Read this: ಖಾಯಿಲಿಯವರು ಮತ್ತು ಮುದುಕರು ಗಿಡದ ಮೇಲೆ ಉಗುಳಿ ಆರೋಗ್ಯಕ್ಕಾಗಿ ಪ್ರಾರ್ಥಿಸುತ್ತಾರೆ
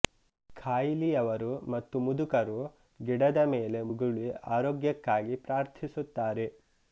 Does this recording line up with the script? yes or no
yes